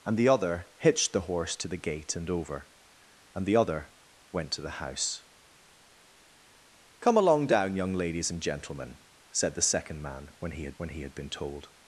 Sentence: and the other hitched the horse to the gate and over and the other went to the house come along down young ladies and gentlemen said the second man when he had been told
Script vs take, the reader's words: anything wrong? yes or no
yes